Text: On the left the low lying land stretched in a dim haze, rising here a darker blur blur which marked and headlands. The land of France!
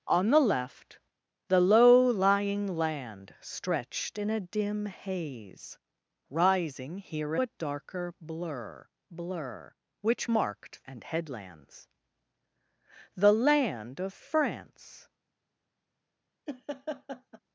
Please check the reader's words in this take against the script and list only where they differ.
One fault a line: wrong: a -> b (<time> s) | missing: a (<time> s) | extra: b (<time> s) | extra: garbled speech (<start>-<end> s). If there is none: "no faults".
no faults